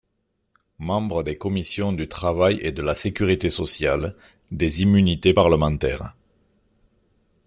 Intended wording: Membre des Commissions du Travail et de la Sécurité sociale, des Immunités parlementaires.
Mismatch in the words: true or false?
false